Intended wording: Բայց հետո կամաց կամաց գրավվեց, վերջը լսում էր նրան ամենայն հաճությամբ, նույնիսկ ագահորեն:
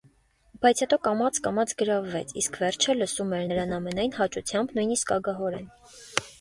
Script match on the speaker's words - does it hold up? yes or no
no